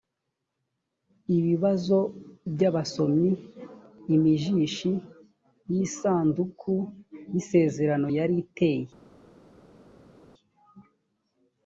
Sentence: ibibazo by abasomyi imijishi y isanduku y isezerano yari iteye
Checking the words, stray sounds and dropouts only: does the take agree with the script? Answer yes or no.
yes